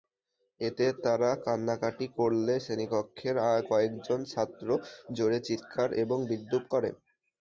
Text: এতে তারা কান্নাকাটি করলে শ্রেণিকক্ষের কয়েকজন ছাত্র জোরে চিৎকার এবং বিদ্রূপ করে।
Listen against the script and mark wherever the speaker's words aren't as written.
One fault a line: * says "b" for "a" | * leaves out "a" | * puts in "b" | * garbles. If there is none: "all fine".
all fine